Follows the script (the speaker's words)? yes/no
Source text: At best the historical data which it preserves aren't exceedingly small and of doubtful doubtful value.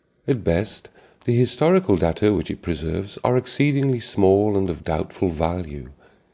no